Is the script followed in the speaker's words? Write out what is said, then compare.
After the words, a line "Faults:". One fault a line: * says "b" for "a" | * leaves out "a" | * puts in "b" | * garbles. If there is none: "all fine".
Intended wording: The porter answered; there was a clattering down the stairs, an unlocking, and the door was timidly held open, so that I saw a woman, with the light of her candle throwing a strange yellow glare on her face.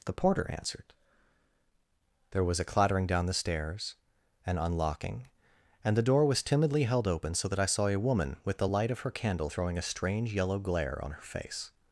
The porter answered; there was a clattering down the stairs, an unlocking, and the door was timidly held open, so that I saw a woman, with the light of her candle throwing a strange yellow glare on her face.
Faults:
all fine